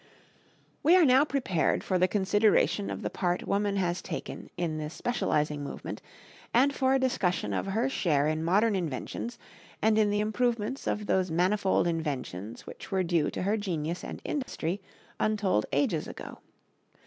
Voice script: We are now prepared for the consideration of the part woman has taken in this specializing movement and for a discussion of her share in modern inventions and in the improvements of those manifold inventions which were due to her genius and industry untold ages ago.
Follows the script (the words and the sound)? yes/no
no